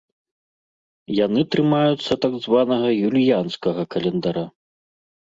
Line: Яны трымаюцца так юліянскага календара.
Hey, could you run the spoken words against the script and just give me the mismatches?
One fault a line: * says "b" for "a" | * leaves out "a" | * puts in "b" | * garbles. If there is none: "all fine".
* puts in "званага"